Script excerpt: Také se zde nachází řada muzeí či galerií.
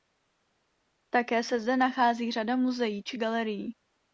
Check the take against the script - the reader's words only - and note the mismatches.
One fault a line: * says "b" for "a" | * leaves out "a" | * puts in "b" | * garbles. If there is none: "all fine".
all fine